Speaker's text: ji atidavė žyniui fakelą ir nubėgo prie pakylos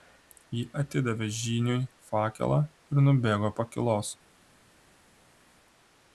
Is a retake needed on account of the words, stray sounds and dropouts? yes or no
yes